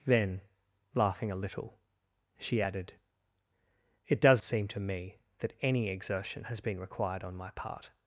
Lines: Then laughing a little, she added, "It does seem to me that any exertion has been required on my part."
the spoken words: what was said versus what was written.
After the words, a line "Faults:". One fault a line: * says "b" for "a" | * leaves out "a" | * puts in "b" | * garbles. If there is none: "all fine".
Then laughing a little, she added, "It does seem to me that any exertion has been required on my part."
Faults:
all fine